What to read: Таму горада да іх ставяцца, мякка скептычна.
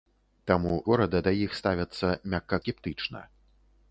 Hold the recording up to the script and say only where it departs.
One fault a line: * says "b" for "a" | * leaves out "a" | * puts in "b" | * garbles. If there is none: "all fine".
all fine